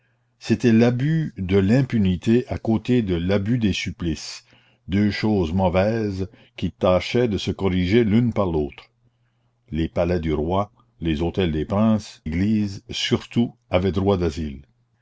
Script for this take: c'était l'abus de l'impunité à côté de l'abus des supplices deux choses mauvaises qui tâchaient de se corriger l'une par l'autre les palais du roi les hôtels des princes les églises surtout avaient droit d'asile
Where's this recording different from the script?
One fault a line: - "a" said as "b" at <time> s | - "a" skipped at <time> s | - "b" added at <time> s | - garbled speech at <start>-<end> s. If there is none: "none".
- "les" skipped at 12.2 s